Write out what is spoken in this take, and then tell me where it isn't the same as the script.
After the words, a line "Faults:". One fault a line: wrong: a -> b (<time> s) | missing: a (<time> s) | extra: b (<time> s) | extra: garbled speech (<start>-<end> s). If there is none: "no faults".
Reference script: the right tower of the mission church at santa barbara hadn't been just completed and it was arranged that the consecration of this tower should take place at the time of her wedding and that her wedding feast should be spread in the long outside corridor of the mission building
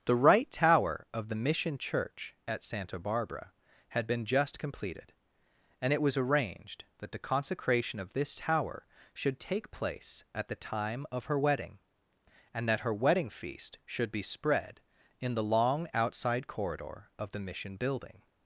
the right tower of the mission church at santa barbara had been just completed and it was arranged that the consecration of this tower should take place at the time of her wedding and that her wedding feast should be spread in the long outside corridor of the mission building
Faults:
wrong: hadn't -> had (3.9 s)